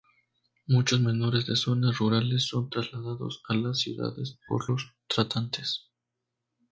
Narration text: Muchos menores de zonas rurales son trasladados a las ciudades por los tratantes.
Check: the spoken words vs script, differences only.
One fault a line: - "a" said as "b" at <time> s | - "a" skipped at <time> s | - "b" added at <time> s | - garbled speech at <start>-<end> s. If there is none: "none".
none